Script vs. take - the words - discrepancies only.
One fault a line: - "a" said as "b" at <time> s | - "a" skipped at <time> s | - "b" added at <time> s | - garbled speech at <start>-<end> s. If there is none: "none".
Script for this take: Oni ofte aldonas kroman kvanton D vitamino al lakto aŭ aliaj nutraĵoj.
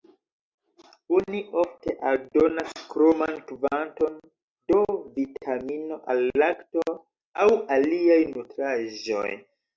none